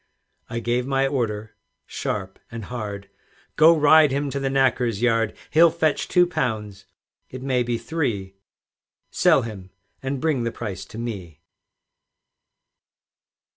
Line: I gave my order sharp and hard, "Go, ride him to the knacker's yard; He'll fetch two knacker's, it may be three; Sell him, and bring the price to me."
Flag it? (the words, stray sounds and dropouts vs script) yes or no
yes